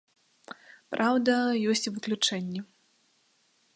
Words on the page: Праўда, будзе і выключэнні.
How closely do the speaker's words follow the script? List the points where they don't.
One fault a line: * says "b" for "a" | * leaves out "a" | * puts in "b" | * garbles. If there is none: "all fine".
* says "ёсць" for "будзе"